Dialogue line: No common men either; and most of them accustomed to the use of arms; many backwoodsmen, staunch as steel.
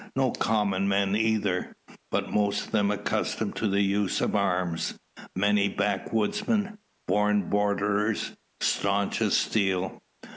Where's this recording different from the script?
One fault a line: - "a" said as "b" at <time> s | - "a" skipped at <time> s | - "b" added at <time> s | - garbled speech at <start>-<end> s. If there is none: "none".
- "and" said as "but" at 2.1 s
- "born borderers" added at 7.1 s